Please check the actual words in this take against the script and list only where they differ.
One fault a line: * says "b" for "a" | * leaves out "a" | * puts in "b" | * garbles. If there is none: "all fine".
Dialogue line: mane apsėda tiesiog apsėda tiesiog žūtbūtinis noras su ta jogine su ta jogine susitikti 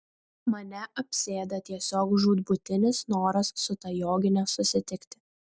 * leaves out "apsėda tiesiog"
* leaves out "su ta jogine"